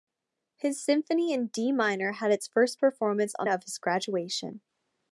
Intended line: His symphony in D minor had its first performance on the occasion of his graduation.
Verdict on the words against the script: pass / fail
fail